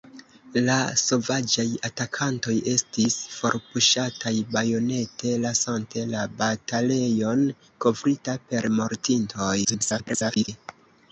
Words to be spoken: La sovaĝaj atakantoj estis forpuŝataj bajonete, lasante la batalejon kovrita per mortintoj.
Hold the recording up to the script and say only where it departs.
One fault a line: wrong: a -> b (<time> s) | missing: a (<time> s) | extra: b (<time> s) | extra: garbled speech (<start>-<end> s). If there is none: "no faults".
extra: garbled speech (9.6-10.5 s)